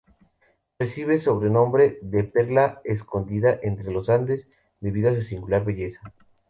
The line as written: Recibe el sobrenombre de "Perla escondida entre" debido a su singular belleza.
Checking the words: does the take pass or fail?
fail